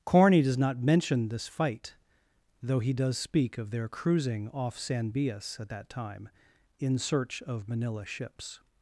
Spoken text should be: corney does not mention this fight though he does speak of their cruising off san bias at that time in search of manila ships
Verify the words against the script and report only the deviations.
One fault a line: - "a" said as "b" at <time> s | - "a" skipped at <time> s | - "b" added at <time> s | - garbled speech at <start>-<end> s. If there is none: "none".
none